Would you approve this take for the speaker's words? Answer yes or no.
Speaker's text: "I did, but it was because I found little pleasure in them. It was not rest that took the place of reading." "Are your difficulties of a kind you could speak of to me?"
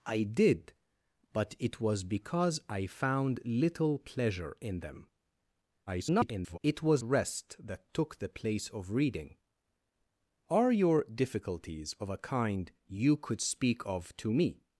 no